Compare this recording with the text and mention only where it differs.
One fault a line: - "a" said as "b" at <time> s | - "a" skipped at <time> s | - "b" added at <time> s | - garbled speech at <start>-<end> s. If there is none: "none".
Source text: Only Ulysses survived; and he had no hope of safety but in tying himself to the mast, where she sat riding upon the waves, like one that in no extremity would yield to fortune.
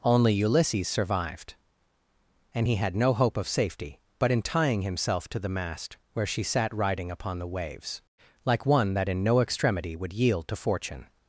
none